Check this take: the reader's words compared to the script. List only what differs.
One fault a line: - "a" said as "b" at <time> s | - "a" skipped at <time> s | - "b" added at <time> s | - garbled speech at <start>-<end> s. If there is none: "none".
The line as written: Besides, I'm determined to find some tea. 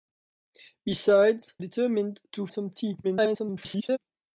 - "I'm" skipped at 1.6 s
- "find" skipped at 2.5 s
- garbled speech at 3.0-4.0 s